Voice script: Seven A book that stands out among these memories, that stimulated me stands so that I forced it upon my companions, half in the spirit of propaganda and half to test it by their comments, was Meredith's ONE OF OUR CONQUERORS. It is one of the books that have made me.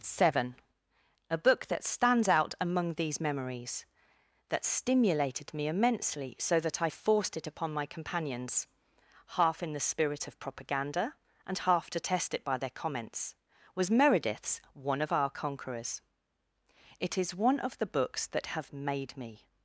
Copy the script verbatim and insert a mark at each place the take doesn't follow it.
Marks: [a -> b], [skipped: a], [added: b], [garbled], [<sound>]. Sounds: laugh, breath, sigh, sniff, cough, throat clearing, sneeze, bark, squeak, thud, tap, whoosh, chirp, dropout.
Seven A book that stands out among these memories, that stimulated me [stands -> immensely] so that I forced it upon my companions, half in the spirit of propaganda and half to test it by their comments, was Meredith's ONE OF OUR CONQUERORS. It is one of the books that have made me.